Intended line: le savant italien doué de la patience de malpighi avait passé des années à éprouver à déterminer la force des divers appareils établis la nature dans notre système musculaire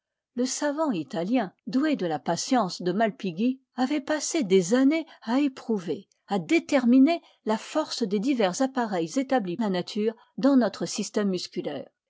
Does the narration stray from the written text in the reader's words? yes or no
no